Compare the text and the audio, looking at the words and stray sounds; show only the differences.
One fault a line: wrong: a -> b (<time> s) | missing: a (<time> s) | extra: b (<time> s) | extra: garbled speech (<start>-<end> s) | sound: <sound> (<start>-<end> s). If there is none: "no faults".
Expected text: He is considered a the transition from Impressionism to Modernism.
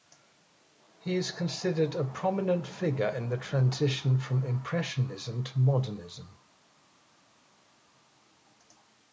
extra: prominent figure in (2.0 s)